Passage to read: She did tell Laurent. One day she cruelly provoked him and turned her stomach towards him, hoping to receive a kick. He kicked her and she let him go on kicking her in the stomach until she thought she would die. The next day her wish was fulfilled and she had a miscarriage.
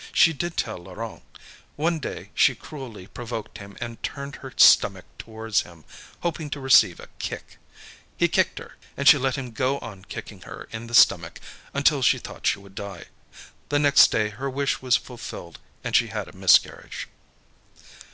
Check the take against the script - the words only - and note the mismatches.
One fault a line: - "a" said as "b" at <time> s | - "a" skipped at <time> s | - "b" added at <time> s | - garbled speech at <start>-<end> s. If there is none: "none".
none